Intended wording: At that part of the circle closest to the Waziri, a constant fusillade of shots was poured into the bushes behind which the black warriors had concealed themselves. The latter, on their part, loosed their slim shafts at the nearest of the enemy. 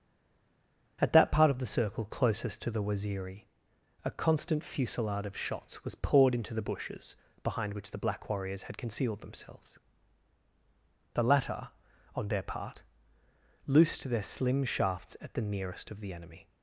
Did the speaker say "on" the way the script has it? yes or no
yes